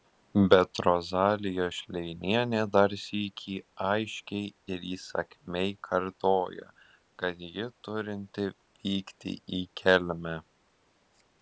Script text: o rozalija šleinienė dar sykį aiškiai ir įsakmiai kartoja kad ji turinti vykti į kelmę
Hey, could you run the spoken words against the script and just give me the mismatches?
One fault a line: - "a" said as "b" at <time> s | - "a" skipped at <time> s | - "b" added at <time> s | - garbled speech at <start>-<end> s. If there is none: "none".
- "o" said as "bet" at 0.5 s